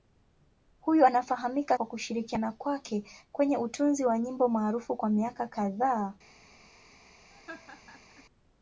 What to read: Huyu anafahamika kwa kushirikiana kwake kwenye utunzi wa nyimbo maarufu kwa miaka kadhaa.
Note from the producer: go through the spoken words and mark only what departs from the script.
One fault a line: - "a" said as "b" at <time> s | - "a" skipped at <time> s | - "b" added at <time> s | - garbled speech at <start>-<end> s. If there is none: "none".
none